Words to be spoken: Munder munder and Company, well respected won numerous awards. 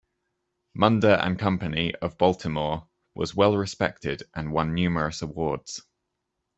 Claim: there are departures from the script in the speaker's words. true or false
true